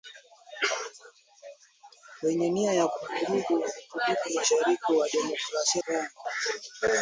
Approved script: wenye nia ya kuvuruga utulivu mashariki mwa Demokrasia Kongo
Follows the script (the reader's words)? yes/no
yes